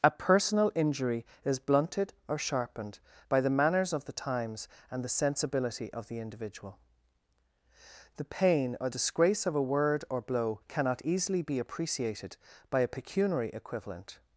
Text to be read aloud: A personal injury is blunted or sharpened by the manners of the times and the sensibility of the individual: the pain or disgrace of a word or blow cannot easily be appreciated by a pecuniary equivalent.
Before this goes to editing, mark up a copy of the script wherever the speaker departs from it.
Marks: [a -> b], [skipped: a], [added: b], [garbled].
A personal injury is blunted or sharpened by the manners of the times and the sensibility of the individual: the pain or disgrace of a word or blow cannot easily be appreciated by a pecuniary equivalent.